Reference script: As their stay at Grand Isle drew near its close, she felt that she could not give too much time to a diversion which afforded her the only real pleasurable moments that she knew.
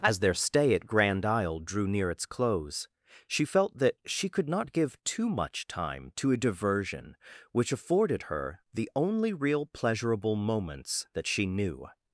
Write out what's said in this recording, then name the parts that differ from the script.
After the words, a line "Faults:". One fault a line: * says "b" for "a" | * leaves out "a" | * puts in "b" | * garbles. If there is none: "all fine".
As their stay at Grand Isle drew near its close, she felt that she could not give too much time to a diversion which afforded her the only real pleasurable moments that she knew.
Faults:
all fine